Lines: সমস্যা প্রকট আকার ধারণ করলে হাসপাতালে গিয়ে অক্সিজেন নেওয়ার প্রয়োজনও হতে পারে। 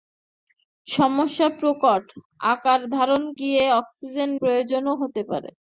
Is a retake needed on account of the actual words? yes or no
yes